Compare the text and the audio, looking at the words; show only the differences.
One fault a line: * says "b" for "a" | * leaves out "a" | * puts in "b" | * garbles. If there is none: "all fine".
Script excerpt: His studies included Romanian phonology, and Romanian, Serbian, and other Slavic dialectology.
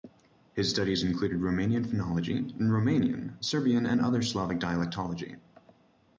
all fine